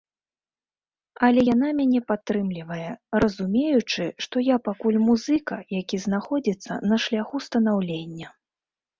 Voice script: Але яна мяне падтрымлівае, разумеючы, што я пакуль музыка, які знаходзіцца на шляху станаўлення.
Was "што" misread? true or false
false